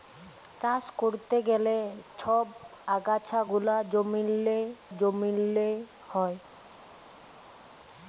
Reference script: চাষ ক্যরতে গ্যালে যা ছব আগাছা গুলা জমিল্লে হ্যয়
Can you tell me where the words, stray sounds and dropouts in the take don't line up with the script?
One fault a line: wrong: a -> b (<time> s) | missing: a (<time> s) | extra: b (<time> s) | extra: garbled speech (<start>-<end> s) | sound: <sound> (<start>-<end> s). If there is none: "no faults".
missing: যা (1.8 s)
extra: জমিল্লে (5.0 s)